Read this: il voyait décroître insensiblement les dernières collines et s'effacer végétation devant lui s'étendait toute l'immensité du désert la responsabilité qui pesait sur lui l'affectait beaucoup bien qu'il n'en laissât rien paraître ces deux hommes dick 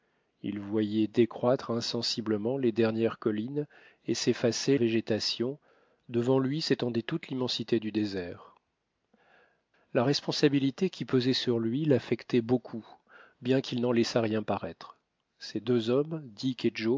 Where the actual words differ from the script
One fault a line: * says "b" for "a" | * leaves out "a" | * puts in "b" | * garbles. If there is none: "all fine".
all fine